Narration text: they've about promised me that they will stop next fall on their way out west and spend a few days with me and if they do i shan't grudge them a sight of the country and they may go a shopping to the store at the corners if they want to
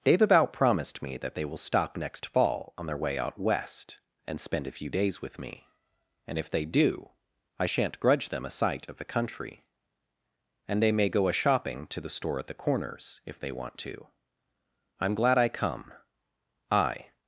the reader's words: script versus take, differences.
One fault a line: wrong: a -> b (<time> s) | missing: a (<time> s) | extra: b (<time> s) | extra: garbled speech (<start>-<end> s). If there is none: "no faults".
extra: i'm glad i come i (15.0 s)